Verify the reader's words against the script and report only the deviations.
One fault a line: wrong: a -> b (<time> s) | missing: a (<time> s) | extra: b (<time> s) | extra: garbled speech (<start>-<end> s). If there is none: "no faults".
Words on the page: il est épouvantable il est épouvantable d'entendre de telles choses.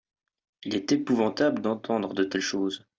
missing: il est épouvantable (1.6 s)